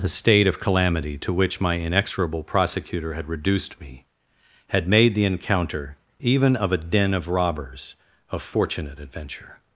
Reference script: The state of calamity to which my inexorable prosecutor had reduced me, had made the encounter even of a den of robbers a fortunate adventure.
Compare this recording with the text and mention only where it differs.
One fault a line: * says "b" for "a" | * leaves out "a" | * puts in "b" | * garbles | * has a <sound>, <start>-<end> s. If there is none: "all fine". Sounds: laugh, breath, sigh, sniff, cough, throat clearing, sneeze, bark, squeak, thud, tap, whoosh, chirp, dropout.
all fine